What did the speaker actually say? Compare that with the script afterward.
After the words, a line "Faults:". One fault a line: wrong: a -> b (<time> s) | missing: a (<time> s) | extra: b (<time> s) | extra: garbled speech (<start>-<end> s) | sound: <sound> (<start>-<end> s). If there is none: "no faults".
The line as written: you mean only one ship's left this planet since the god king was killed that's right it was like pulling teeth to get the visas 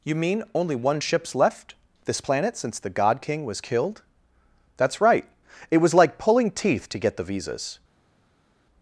you mean only one ship's left this planet since the god king was killed that's right it was like pulling teeth to get the visas
Faults:
no faults